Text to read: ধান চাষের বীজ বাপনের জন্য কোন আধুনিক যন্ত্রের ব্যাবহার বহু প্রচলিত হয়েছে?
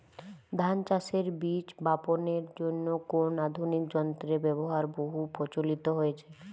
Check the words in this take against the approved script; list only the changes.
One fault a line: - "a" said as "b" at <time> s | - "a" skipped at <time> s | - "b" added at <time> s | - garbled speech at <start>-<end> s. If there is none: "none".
none